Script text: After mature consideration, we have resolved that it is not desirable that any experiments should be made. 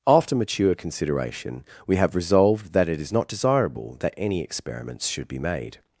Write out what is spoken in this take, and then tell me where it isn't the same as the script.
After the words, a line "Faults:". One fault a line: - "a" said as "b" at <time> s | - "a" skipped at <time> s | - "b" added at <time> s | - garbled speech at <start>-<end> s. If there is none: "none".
After mature consideration, we have resolved that it is not desirable that any experiments should be made.
Faults:
none